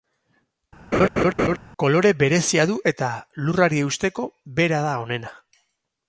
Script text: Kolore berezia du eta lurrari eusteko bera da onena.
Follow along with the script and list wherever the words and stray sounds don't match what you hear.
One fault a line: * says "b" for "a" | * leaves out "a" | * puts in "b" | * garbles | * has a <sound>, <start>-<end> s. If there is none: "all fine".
* has a laugh, 0.9-1.6 s